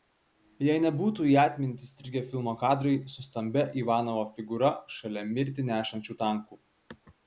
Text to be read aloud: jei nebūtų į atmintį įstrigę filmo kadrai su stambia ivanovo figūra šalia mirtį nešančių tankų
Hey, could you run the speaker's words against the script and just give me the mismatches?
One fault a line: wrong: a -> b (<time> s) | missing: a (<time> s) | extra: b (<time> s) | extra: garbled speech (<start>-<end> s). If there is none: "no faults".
no faults